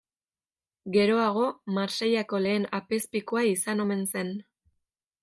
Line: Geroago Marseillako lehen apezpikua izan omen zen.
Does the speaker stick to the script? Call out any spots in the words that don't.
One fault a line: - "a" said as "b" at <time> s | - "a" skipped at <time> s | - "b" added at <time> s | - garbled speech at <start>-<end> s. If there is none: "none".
none